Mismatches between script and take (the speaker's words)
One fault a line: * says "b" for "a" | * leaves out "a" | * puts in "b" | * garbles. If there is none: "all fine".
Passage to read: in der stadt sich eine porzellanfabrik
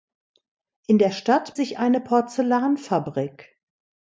all fine